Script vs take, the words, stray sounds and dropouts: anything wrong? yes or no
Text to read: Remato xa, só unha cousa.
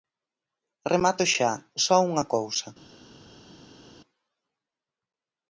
no